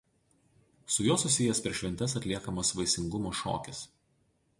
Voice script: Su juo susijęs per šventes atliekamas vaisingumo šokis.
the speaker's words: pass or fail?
pass